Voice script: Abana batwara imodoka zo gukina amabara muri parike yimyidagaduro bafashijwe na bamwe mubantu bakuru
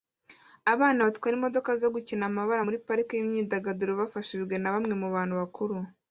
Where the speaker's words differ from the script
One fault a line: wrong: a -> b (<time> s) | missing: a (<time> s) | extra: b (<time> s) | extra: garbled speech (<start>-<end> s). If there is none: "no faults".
no faults